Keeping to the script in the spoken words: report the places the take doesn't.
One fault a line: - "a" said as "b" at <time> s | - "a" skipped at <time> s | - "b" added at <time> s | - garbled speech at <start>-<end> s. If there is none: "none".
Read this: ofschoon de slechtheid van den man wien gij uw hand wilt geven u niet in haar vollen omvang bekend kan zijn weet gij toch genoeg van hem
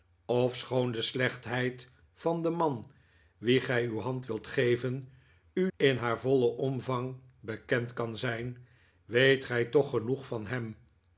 - "niet" skipped at 5.7 s